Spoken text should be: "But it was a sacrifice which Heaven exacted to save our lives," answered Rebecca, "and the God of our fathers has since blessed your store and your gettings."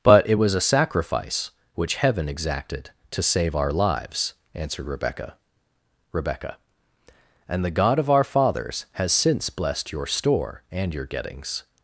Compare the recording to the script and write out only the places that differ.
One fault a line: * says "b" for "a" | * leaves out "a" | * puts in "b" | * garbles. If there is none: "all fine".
* puts in "Rebecca"